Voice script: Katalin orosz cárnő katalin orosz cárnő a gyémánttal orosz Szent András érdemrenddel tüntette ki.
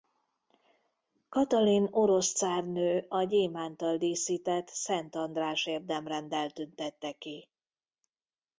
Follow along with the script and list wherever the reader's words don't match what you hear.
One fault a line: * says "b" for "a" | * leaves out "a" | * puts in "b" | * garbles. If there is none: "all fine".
* leaves out "katalin orosz cárnő"
* says "díszített" for "orosz"